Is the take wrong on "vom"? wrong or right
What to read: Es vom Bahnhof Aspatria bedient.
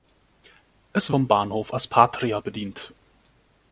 right